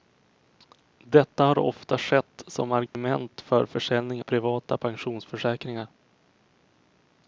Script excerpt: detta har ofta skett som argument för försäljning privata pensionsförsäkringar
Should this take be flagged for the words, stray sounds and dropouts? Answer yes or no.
yes